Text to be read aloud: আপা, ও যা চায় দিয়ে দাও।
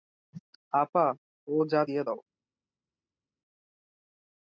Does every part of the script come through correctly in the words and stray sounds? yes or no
no